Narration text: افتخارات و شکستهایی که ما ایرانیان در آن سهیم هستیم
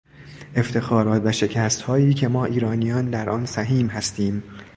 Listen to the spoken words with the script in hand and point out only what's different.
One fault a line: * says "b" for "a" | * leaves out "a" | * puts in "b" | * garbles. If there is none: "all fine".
all fine